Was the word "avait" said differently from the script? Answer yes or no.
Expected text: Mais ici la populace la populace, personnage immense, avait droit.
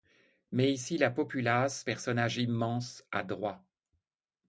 yes